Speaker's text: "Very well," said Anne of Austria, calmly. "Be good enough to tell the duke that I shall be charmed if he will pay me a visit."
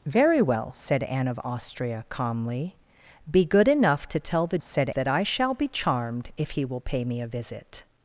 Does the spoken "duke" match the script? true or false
false